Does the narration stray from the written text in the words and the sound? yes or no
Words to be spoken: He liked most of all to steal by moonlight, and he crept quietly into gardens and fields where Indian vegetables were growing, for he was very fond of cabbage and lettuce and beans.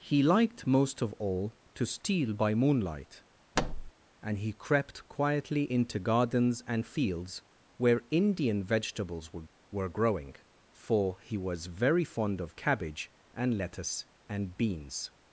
yes